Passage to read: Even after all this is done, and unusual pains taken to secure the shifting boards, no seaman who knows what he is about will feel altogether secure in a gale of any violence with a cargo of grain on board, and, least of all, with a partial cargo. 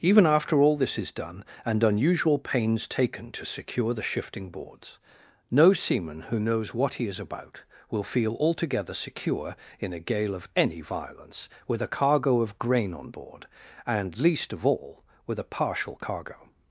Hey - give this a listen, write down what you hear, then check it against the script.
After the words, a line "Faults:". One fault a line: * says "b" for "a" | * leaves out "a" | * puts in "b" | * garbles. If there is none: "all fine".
Even after all this is done, and unusual pains taken to secure the shifting boards, no seaman who knows what he is about will feel altogether secure in a gale of any violence with a cargo of grain on board, and, least of all, with a partial cargo.
Faults:
all fine